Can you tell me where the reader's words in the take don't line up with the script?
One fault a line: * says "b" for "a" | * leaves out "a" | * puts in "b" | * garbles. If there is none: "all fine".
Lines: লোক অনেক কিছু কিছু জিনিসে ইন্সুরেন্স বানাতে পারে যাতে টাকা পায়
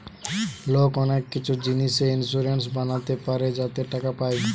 * leaves out "কিছু"